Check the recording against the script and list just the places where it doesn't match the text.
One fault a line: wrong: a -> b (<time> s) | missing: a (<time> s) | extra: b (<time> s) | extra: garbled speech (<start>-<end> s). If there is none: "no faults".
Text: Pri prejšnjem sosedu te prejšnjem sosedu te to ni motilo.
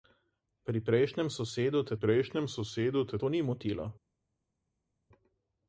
no faults